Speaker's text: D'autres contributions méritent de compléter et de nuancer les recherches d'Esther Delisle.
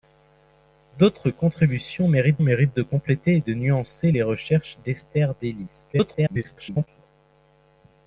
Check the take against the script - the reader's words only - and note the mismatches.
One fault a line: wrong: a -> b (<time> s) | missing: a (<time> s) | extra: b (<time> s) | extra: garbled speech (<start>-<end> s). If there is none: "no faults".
extra: méritent (2.4 s)
extra: garbled speech (5.9-6.9 s)